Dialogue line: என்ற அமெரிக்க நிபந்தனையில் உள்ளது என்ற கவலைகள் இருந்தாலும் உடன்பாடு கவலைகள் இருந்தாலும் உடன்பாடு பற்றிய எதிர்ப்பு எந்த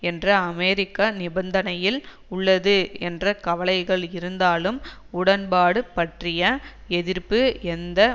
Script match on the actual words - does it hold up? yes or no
no